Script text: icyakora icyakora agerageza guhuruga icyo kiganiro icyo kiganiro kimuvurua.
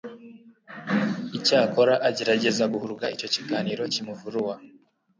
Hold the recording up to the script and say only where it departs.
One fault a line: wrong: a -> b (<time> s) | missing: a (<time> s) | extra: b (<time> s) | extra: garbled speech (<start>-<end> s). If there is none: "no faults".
missing: icyakora (1.9 s)
missing: icyo kiganiro (3.8 s)